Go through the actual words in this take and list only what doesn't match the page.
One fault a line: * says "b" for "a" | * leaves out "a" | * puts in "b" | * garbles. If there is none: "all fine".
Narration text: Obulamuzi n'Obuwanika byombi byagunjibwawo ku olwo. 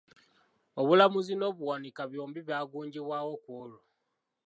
all fine